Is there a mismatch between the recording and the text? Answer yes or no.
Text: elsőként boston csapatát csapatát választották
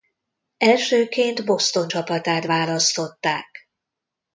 yes